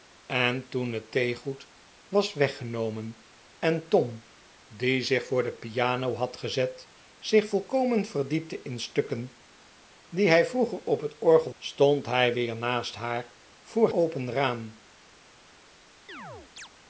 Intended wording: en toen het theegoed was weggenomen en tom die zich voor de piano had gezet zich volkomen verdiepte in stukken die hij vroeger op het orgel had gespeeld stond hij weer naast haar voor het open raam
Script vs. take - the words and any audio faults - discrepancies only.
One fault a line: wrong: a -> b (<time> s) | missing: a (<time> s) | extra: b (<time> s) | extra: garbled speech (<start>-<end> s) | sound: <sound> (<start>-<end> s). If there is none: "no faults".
missing: had gespeeld (11.5 s)
missing: het (13.9 s)
sound: chirp (16.1-16.7 s)